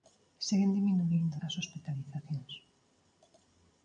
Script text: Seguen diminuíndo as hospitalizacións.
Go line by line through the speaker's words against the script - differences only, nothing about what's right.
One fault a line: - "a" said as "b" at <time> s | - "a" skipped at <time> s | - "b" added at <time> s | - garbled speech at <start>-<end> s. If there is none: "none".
none